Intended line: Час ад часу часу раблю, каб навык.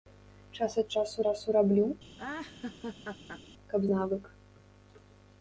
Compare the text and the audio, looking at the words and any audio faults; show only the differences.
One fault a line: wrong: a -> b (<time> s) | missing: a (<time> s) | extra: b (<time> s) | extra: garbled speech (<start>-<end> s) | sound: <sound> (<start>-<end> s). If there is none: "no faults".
sound: laugh (2.2-3.4 s)